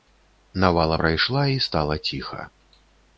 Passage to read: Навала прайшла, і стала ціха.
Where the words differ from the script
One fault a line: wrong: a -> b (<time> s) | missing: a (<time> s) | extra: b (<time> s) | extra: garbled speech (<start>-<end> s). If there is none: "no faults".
no faults